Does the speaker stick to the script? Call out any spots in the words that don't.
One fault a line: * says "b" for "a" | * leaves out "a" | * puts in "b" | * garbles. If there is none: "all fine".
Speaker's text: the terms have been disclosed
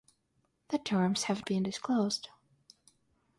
all fine